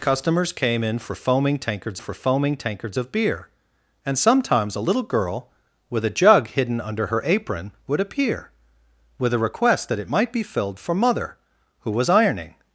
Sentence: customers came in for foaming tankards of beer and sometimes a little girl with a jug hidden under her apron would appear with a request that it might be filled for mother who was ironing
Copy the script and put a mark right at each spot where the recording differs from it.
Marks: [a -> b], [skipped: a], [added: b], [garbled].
customers came in for foaming tankards [added: for foaming tankards] of beer and sometimes a little girl with a jug hidden under her apron would appear with a request that it might be filled for mother who was ironing